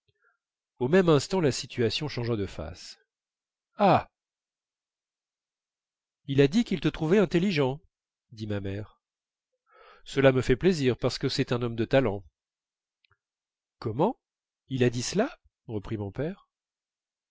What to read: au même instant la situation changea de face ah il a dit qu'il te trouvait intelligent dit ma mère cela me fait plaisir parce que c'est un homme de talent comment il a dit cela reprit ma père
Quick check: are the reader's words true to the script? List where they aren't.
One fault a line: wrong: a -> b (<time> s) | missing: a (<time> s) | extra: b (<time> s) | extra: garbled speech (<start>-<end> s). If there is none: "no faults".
wrong: ma -> mon (16.0 s)